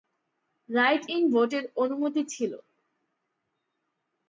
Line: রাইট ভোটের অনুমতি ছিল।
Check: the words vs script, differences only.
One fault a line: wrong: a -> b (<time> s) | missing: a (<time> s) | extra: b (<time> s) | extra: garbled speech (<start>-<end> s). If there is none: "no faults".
extra: ইন (1.1 s)